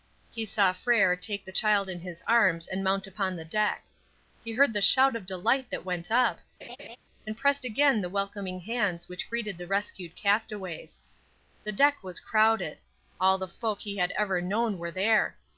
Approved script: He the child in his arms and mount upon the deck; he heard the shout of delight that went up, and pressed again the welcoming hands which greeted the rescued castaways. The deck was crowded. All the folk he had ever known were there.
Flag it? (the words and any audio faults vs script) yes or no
yes